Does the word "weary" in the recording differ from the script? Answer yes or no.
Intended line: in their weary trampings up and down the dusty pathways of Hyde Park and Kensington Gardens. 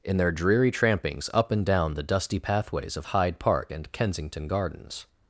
yes